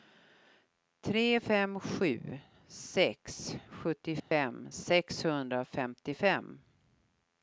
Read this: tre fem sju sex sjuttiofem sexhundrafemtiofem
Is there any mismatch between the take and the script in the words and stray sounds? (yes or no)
yes